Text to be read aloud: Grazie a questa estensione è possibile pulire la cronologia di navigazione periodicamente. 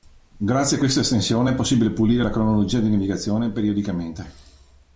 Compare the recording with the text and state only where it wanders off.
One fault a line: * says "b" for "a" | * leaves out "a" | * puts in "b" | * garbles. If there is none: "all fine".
all fine